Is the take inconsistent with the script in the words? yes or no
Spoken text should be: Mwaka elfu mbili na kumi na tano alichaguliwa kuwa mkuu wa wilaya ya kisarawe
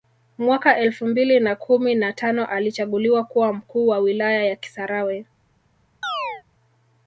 no